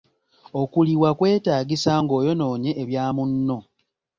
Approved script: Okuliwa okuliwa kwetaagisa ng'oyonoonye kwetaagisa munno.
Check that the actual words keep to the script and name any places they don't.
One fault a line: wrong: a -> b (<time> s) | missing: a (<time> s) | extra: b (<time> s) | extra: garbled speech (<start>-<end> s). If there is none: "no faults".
missing: okuliwa (1.1 s)
wrong: kwetaagisa -> ebya (2.8 s)